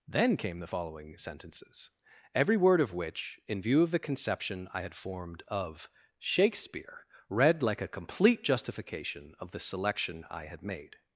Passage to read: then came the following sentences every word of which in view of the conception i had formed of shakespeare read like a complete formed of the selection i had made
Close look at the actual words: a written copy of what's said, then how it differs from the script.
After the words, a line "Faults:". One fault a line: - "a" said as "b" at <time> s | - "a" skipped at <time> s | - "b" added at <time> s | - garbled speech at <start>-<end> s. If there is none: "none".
then came the following sentences every word of which in view of the conception i had formed of shakespeare read like a complete justification of the selection i had made
Faults:
- "formed" said as "justification" at 8.4 s